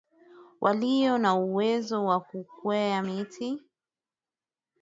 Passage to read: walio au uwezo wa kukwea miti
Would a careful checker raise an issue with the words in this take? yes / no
yes